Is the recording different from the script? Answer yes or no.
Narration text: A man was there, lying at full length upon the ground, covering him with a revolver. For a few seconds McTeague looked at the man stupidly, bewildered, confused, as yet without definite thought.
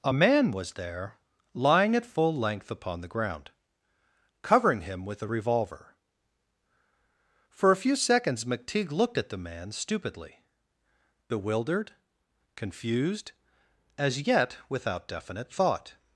no